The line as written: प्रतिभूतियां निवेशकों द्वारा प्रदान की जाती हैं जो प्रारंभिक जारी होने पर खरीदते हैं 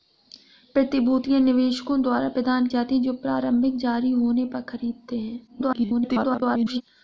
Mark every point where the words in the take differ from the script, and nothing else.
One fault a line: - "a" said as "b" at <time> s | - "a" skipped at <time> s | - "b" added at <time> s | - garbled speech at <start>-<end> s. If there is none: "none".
- "की" skipped at 2.7 s
- garbled speech at 5.5-6.8 s